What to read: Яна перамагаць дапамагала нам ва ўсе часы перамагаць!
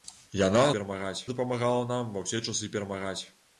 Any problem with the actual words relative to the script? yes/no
no